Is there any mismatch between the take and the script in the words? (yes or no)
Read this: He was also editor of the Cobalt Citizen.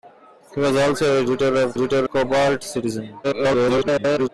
yes